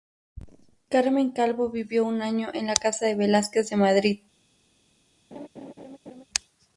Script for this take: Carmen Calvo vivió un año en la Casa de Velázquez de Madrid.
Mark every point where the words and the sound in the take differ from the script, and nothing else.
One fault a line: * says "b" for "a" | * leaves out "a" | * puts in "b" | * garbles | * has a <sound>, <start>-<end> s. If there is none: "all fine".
* has a laugh, 5.3-6.2 s